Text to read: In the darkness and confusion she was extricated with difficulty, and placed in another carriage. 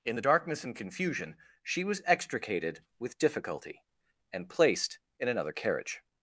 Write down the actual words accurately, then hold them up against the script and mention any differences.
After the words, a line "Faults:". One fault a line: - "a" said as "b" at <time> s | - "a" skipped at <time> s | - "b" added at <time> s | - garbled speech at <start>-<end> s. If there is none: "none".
In the darkness and confusion she was extricated with difficulty, and placed in another carriage.
Faults:
none